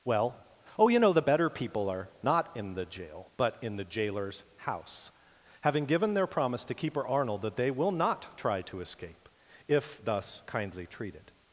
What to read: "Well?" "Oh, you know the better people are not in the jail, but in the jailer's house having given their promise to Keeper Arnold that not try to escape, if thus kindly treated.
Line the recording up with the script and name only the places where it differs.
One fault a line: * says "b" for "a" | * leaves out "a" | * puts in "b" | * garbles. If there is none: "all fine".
* puts in "they will"